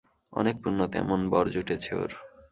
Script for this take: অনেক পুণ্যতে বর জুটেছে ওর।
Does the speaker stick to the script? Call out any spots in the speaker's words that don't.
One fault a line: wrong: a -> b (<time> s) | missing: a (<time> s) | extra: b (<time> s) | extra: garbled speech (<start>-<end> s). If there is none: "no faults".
extra: এমন (1.0 s)